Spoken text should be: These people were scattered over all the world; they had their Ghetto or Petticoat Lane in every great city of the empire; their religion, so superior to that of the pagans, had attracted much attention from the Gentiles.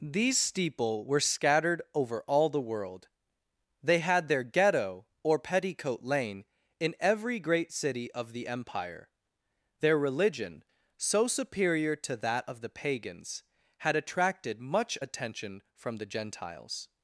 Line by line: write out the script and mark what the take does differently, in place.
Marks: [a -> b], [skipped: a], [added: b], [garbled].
These [people -> steeple] were scattered over all the world; they had their Ghetto or Petticoat Lane in every great city of the empire; their religion, so superior to that of the pagans, had attracted much attention from the Gentiles.